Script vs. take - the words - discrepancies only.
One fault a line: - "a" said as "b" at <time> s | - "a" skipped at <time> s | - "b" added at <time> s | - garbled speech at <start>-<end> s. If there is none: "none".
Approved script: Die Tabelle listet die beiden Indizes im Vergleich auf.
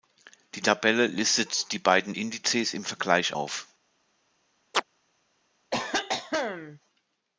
none